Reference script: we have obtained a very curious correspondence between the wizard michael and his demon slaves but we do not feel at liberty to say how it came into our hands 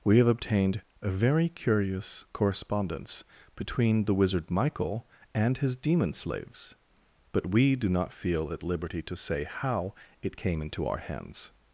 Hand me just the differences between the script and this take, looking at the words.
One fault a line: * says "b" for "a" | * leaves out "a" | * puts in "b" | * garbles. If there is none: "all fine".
all fine